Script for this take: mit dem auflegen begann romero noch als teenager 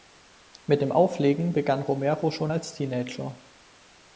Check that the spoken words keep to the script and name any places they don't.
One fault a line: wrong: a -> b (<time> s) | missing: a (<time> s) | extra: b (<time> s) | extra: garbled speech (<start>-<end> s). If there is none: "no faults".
wrong: noch -> schon (2.3 s)